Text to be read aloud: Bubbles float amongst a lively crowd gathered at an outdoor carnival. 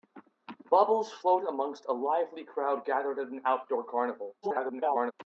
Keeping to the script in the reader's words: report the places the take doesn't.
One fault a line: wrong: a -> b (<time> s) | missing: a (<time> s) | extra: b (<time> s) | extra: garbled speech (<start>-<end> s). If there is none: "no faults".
extra: garbled speech (4.4-5.1 s)